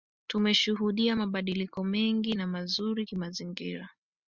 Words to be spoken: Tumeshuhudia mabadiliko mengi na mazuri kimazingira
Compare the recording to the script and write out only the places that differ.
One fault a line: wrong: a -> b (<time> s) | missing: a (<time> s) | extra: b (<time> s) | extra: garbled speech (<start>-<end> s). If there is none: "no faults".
no faults